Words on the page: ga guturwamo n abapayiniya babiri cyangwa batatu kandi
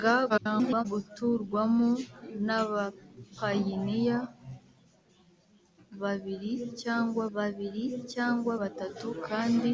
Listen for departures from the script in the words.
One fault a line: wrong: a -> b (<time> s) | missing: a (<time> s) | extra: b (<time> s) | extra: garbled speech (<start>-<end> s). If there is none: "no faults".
extra: garbled speech (0.3-0.8 s)
extra: babiri cyangwa (7.4 s)